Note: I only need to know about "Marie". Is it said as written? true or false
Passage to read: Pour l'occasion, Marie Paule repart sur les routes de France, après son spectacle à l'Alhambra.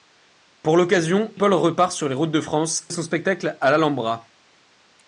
false